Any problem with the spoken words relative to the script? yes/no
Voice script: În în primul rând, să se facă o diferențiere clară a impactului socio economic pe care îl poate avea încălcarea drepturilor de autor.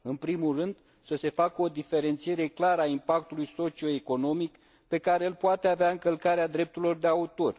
yes